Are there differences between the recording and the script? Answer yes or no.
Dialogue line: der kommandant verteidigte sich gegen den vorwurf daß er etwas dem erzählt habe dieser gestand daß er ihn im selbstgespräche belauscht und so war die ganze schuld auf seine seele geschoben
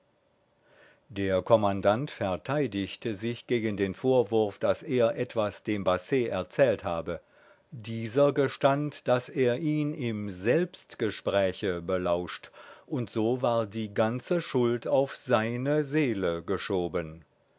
yes